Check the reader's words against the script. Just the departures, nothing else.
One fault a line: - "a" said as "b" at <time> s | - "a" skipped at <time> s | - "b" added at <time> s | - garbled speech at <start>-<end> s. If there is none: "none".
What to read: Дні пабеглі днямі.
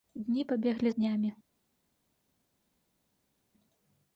none